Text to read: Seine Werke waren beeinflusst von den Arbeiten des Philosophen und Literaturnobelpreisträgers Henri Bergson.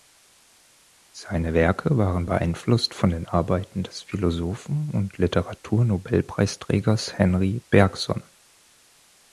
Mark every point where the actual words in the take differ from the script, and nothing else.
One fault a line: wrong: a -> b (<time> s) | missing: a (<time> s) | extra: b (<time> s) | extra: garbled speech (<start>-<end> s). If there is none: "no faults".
no faults